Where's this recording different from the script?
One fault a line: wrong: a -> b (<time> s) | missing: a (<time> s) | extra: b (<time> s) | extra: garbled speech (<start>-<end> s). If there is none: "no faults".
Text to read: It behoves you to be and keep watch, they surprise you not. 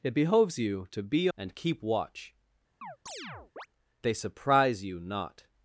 no faults